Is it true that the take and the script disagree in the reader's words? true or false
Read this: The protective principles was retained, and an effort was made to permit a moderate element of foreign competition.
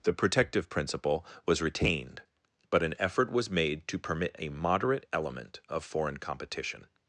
true